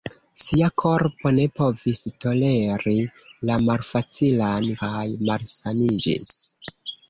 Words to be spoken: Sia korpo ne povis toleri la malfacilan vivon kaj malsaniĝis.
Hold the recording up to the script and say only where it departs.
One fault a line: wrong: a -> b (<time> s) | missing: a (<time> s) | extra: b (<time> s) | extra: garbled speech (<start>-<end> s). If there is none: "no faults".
missing: vivon (4.7 s)